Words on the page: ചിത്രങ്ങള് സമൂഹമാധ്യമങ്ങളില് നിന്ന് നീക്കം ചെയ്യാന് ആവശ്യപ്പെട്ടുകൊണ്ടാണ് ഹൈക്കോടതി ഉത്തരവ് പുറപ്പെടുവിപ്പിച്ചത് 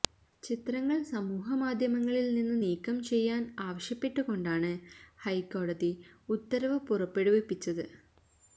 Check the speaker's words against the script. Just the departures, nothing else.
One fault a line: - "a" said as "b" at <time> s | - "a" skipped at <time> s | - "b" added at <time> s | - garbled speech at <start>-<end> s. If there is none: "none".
none